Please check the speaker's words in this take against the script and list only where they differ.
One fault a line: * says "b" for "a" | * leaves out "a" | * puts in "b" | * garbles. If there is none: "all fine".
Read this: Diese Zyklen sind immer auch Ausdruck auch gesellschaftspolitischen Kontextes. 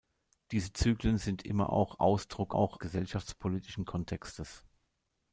all fine